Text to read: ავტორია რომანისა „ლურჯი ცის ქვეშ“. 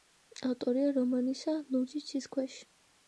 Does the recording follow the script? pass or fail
pass